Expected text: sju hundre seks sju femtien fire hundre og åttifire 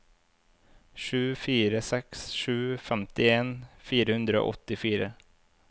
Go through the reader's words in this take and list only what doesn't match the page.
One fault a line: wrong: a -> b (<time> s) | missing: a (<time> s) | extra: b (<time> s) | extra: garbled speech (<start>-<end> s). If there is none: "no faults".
wrong: hundre -> fire (1.3 s)